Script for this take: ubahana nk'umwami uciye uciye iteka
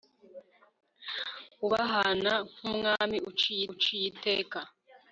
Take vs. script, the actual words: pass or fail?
pass